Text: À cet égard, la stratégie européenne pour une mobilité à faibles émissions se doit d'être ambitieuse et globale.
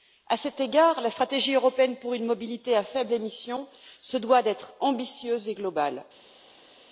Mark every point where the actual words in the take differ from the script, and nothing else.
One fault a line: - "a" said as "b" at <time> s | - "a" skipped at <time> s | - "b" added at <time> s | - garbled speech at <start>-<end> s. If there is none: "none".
none